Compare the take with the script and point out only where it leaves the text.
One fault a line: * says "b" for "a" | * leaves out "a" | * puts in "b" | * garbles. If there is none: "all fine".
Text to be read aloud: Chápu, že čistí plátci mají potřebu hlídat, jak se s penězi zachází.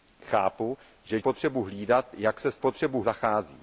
* leaves out "čistí plátci mají"
* says "potřebu" for "penězi"